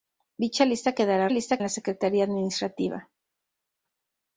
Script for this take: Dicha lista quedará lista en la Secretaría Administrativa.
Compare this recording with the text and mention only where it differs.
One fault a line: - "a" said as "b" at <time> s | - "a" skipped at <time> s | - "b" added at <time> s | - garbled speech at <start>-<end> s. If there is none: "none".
none